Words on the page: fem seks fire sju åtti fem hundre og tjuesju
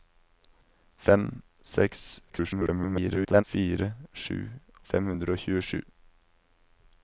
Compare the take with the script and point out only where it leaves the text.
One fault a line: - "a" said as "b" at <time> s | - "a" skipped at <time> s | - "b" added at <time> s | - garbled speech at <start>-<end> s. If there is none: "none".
- garbled speech at 2.3-3.4 s
- "åtti" skipped at 4.4 s